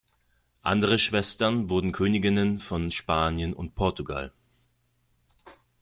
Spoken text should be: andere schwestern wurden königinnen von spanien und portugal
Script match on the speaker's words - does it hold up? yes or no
yes